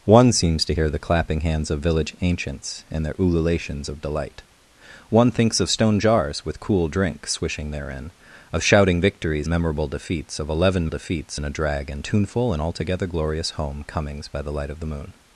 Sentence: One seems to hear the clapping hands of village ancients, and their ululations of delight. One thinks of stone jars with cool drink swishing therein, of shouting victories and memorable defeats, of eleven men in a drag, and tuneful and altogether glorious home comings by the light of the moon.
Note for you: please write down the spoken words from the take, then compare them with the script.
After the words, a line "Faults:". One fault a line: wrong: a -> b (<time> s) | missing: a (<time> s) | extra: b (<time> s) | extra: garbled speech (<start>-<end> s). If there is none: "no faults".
One seems to hear the clapping hands of village ancients, and their ululations of delight. One thinks of stone jars with cool drink swishing therein, of shouting victories memorable defeats, of eleven defeats in a drag, and tuneful and altogether glorious home comings by the light of the moon.
Faults:
missing: and (9.5 s)
wrong: men -> defeats (10.9 s)